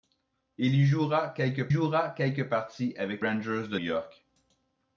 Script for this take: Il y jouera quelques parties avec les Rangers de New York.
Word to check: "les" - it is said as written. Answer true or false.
false